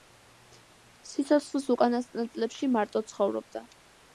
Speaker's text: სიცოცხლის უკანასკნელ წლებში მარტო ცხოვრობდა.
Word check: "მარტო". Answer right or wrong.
right